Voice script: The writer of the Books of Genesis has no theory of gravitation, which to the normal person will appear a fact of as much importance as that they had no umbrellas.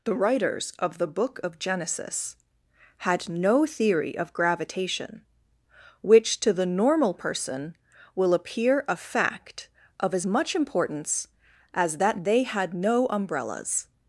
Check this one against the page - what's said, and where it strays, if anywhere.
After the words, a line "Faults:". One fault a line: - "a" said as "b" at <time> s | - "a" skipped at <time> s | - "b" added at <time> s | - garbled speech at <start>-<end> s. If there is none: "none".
The writers of the Book of Genesis had no theory of gravitation, which to the normal person will appear a fact of as much importance as that they had no umbrellas.
Faults:
- "writer" said as "writers" at 0.1 s
- "Books" said as "Book" at 1.1 s
- "has" said as "had" at 3.0 s